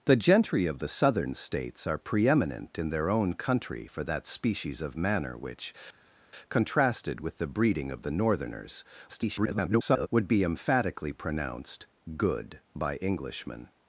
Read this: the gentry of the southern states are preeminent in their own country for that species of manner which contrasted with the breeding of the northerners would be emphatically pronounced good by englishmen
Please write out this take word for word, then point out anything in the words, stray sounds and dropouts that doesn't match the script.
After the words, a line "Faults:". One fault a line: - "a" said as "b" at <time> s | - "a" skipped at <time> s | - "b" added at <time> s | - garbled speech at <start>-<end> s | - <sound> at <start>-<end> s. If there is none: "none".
the gentry of the southern states are preeminent in their own country for that species of manner which contrasted with the breeding of the northerners [garbled] would be emphatically pronounced good by englishmen
Faults:
- garbled speech at 9.1-10.1 s